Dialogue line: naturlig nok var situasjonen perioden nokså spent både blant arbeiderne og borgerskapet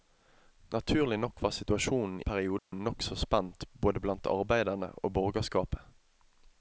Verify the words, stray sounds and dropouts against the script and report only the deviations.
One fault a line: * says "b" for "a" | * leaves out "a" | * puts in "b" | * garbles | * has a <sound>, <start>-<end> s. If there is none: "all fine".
* has a dropout, 2.6-2.7 s